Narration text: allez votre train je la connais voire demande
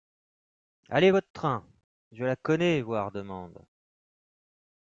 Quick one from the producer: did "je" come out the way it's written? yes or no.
yes